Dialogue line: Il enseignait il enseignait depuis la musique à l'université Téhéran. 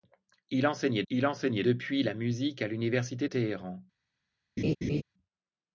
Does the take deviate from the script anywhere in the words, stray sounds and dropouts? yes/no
yes